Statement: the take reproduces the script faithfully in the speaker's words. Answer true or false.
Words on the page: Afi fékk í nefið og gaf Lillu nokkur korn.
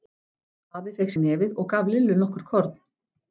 true